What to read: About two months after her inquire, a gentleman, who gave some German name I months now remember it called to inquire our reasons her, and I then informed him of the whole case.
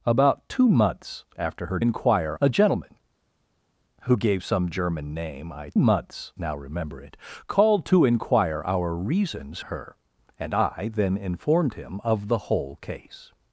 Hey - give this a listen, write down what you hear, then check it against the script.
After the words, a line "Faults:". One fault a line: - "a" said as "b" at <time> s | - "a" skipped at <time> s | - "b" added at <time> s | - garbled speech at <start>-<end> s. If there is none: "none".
About two months after her inquire, a gentleman, who gave some German name I months now remember it called to inquire our reasons her, and I then informed him of the whole case.
Faults:
none